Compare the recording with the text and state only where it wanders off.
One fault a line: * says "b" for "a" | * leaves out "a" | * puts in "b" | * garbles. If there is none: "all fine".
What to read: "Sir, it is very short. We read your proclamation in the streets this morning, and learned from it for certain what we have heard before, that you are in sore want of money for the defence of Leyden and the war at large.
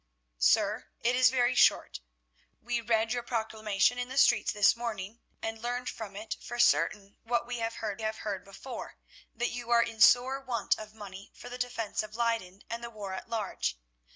* puts in "have heard"